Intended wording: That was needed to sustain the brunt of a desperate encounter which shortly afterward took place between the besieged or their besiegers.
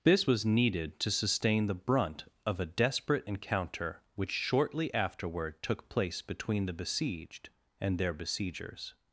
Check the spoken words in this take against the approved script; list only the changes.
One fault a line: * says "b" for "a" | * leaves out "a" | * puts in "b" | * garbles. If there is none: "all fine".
* says "This" for "That"
* says "and" for "or"